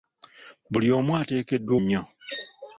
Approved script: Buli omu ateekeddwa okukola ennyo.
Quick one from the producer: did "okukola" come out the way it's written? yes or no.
no